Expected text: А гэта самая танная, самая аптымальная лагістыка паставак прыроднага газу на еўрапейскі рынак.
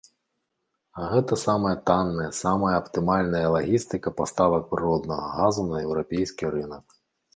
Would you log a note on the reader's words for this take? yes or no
no